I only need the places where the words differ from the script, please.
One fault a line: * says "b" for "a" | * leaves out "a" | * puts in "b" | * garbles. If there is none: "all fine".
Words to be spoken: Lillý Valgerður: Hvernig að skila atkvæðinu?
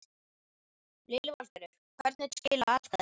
all fine